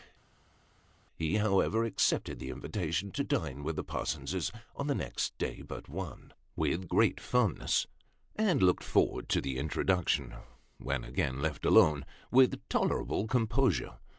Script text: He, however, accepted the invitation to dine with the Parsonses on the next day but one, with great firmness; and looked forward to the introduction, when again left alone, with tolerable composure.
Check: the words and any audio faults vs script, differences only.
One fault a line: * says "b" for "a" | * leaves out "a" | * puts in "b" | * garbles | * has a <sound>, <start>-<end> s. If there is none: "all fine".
all fine